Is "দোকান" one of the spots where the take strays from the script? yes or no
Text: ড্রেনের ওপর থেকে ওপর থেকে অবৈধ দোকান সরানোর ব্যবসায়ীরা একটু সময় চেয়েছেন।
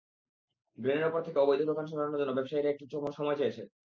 no